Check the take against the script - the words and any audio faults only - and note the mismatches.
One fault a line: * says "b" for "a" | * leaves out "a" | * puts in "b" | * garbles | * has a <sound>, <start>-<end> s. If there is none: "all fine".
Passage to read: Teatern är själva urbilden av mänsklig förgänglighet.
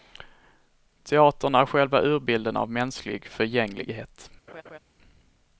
* has a laugh, 4.5-4.8 s